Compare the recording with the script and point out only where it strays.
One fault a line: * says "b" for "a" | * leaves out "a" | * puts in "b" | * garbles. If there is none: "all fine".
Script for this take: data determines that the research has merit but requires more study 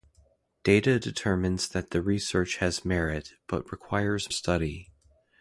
* leaves out "more"